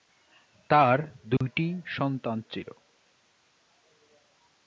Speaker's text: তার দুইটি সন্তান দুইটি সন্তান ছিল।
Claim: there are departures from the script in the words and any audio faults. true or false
true